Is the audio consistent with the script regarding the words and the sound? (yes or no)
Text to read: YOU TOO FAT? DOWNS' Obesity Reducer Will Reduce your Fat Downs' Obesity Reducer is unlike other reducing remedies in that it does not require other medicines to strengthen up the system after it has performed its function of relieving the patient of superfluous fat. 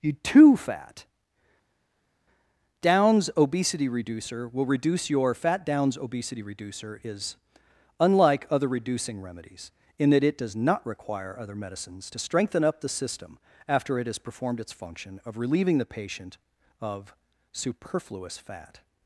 yes